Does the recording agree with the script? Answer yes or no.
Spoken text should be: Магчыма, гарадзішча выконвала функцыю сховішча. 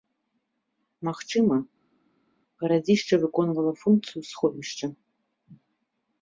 yes